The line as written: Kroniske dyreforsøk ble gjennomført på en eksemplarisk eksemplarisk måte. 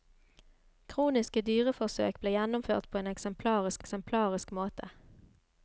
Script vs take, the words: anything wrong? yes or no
no